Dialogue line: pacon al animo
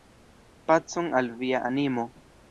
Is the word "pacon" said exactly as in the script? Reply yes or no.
yes